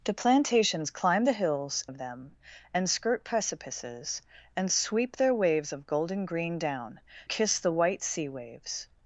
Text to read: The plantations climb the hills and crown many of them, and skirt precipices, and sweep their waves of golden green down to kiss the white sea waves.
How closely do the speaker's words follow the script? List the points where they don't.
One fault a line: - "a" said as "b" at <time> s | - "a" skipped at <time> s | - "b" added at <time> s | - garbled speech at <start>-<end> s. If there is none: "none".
- "and crown many" skipped at 1.8 s
- "to" skipped at 7.0 s